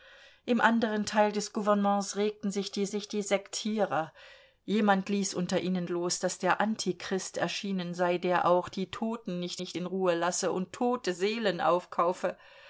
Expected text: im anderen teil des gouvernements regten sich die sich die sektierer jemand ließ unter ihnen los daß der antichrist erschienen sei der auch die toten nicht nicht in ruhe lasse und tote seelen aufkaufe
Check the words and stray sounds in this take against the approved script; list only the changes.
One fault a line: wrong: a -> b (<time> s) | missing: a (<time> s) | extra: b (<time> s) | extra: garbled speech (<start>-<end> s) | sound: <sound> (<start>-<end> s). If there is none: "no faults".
no faults